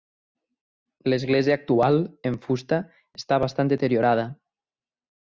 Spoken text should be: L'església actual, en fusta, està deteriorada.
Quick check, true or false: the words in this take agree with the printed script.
false